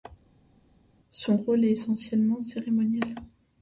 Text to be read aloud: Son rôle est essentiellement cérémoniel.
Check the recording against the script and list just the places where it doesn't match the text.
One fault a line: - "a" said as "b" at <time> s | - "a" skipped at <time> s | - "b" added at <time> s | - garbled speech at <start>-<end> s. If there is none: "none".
none